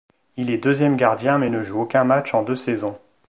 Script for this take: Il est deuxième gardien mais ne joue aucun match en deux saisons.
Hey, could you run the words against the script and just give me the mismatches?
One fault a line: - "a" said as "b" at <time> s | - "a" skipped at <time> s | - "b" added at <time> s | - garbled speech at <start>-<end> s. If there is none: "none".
none